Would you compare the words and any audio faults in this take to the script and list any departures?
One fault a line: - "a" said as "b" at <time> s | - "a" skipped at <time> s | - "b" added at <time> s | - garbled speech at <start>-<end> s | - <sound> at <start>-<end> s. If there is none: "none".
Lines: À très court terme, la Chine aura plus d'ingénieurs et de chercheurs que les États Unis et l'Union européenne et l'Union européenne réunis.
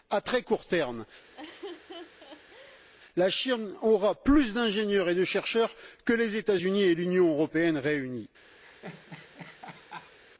- laugh at 1.3-2.9 s
- "et l'Union européenne" skipped at 7.8 s
- laugh at 8.6-10.2 s